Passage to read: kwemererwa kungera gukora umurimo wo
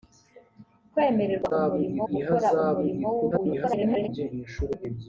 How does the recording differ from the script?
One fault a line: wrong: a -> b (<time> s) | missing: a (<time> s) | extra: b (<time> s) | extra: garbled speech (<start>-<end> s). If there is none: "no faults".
wrong: kungera -> umurimo (1.6 s)
extra: garbled speech (3.3-4.1 s)